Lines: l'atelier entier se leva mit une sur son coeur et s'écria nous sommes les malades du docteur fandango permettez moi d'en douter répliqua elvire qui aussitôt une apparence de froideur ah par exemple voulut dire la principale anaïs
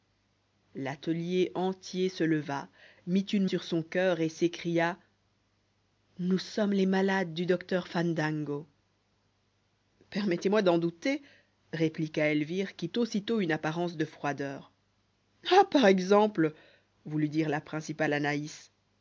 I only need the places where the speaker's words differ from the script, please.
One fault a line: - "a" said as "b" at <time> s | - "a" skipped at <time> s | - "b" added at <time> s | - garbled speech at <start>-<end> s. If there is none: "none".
none